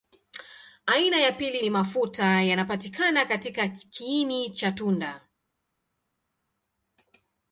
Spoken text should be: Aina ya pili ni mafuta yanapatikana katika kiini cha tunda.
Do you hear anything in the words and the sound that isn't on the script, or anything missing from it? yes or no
no